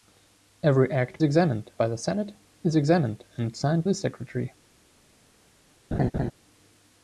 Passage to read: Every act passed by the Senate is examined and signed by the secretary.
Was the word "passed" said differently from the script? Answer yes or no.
yes